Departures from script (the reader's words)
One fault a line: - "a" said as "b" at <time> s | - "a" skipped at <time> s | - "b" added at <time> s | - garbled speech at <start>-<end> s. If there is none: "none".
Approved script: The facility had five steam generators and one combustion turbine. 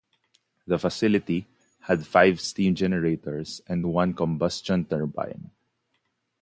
none